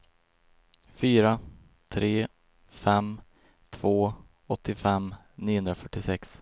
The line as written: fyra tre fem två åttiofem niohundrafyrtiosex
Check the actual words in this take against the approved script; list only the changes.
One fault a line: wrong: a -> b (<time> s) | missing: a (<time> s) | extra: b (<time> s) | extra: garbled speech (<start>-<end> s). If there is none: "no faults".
no faults